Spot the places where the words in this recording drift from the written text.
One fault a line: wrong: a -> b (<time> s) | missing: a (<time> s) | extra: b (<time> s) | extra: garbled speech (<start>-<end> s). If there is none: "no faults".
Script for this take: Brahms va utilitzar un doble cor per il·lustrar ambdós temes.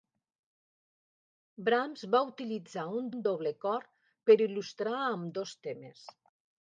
extra: un (3.2 s)